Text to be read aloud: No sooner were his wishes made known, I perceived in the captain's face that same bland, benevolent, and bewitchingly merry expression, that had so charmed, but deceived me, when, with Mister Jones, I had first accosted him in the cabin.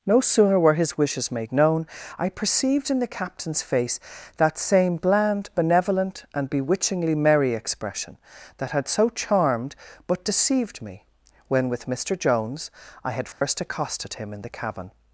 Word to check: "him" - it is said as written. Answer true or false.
true